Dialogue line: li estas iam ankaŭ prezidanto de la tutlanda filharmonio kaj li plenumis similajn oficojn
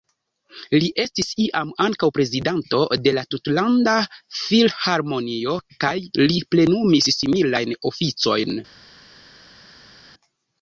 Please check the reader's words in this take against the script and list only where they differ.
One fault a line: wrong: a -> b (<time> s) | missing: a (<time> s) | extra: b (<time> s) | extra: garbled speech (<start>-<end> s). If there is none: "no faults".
wrong: estas -> estis (1.0 s)